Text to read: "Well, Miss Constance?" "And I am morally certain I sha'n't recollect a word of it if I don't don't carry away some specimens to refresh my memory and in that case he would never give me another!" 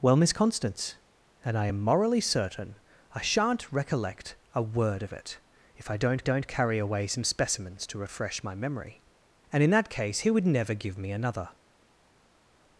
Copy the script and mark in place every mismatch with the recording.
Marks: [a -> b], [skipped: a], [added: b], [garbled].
"Well, Miss Constance?" "And I am morally certain I sha'n't recollect a word of it if I don't don't carry away some specimens to refresh my memory and in that case he would never give me another!"